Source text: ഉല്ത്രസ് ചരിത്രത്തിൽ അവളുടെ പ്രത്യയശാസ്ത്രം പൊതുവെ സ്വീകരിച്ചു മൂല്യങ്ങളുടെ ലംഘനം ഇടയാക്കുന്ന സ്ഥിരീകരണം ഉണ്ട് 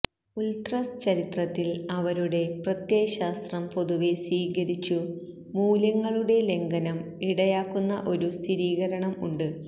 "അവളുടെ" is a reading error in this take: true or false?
true